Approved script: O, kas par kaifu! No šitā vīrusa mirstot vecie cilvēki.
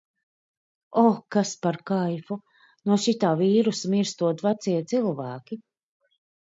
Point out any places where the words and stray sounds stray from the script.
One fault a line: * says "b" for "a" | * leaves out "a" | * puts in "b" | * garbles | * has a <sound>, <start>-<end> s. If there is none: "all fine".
all fine